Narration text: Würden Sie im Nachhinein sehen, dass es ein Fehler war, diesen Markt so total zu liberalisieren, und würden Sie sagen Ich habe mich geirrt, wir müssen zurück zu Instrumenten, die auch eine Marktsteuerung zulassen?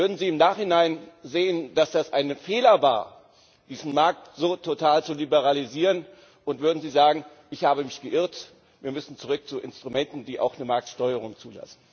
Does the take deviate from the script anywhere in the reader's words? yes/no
no